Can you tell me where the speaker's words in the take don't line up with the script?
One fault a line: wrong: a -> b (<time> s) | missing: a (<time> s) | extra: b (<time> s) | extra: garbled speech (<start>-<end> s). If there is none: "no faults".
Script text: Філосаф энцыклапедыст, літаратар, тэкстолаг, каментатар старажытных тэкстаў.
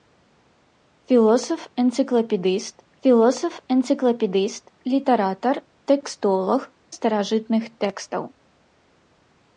extra: філосаф энцыклапедыст (3.1 s)
missing: каментатар (6.6 s)